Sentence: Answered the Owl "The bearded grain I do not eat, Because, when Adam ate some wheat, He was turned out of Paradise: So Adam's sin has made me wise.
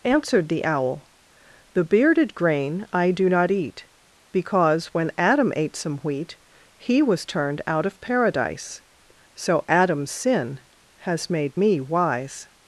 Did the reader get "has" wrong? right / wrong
right